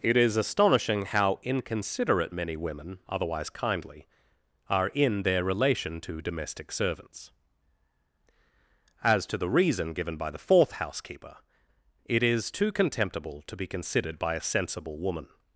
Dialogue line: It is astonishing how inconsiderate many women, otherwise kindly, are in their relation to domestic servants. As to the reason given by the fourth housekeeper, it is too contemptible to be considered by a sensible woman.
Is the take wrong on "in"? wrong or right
right